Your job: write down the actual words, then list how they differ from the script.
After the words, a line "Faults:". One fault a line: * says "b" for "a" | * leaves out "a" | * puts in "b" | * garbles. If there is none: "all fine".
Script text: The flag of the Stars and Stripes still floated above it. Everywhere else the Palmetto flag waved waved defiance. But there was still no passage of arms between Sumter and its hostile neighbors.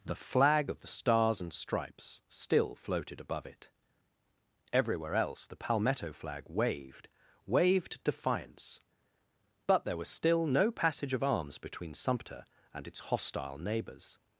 The flag of the Stars and Stripes still floated above it. Everywhere else the Palmetto flag waved waved defiance. But there was still no passage of arms between Sumter and its hostile neighbors.
Faults:
all fine